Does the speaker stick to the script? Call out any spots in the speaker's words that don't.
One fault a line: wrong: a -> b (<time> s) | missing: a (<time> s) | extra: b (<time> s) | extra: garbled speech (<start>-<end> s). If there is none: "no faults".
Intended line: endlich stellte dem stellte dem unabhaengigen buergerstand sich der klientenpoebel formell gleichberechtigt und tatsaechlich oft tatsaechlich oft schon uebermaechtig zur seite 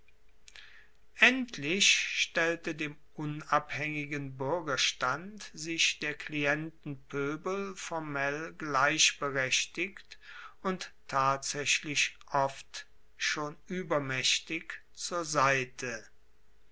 missing: stellte dem (3.0 s)
missing: tatsaechlich oft (12.9 s)